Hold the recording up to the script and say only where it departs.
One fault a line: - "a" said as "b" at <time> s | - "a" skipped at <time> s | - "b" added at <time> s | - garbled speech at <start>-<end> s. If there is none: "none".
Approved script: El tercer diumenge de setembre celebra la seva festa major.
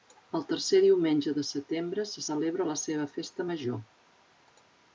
- "se" added at 2.1 s